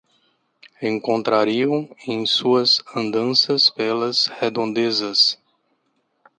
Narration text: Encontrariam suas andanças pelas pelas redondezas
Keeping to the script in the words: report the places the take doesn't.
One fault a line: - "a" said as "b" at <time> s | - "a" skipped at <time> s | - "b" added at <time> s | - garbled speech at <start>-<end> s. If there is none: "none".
- "em" added at 2.1 s
- "pelas" skipped at 4.3 s